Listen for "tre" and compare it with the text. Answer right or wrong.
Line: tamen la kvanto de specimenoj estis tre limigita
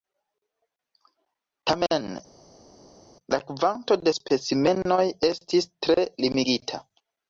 right